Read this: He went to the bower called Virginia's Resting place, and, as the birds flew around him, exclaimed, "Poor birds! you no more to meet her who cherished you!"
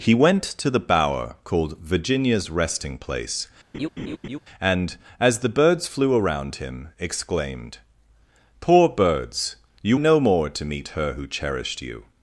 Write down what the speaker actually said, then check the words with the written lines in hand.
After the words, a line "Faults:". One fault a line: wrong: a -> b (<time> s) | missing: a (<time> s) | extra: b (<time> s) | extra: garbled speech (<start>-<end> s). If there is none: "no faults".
He went to the bower called Virginia's Resting place, and, as the birds flew around him, exclaimed, "Poor birds! you no more to meet her who cherished you!"
Faults:
no faults